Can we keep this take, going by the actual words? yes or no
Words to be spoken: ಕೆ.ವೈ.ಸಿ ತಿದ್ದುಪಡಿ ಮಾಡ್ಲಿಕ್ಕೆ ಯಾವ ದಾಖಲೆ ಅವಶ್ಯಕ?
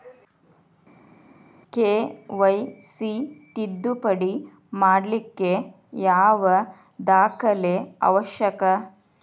yes